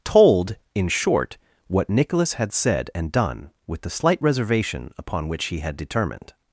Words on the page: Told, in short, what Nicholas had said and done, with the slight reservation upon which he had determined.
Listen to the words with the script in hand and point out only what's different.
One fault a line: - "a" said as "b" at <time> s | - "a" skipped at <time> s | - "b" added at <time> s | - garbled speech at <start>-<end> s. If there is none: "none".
none